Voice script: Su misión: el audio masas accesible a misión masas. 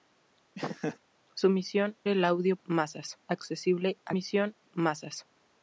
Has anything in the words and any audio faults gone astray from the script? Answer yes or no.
yes